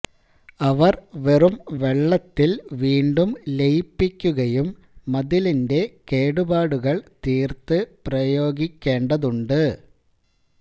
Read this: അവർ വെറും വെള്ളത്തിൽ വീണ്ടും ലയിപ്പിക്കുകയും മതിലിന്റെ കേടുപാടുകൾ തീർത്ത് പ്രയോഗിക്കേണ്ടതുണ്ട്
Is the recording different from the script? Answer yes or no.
no